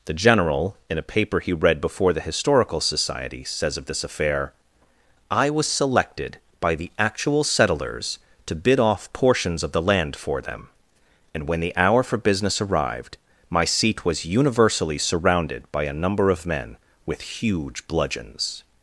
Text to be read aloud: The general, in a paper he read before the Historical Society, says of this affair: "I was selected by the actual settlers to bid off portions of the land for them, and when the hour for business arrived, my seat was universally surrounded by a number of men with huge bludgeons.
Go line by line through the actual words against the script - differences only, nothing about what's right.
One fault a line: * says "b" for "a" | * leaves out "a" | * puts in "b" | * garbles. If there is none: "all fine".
all fine